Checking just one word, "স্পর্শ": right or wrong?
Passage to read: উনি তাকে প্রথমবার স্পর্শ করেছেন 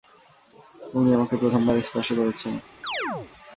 right